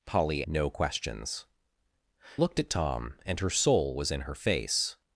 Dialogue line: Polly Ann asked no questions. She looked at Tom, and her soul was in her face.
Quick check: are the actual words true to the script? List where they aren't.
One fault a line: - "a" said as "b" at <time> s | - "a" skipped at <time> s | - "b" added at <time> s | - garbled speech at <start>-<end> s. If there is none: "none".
- "Ann asked" skipped at 0.4 s
- "She" skipped at 1.5 s